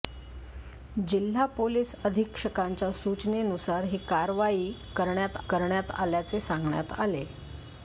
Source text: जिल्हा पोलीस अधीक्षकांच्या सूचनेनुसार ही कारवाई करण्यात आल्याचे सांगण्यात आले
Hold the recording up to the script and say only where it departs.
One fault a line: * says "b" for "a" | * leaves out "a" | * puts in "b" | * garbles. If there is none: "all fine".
* puts in "करण्यात"